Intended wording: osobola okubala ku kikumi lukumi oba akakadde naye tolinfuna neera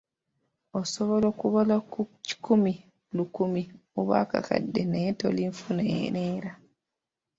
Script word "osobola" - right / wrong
right